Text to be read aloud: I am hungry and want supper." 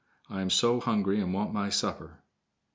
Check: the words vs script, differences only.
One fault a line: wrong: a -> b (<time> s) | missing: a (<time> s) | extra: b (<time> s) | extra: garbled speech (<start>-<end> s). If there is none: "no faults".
extra: so (0.5 s)
extra: my (1.5 s)